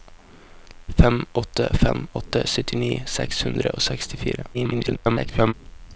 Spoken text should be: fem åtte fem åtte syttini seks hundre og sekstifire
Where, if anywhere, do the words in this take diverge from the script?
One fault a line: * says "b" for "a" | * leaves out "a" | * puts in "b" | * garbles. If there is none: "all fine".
* garbles